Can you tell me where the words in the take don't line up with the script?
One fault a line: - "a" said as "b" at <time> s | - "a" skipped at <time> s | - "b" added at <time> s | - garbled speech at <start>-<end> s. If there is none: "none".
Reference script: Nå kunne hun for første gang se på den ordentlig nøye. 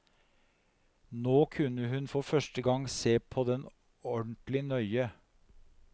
none